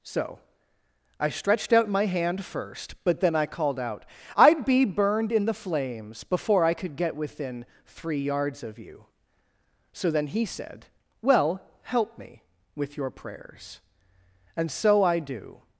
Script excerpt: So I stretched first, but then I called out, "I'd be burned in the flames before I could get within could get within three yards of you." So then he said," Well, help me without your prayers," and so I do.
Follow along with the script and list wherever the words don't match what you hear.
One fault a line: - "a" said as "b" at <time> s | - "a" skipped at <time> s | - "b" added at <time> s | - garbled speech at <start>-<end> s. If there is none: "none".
- "out my hand" added at 1.7 s
- "could get within" skipped at 7.6 s
- "without" said as "with" at 12.7 s